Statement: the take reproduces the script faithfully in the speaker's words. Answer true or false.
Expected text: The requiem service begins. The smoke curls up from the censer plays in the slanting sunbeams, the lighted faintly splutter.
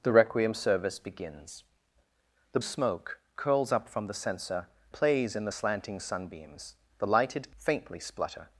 true